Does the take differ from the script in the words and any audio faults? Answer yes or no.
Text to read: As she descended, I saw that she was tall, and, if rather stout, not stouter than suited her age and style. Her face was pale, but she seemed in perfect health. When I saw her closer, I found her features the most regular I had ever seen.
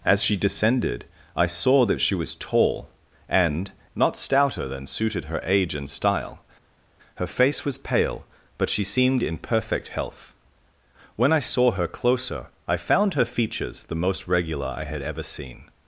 yes